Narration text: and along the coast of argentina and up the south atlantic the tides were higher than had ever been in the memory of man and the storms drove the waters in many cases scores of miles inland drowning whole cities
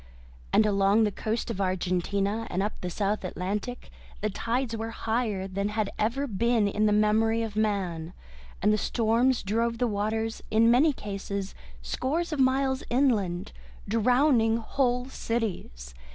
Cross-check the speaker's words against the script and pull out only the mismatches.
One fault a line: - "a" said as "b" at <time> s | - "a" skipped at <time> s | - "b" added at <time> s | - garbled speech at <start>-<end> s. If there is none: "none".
none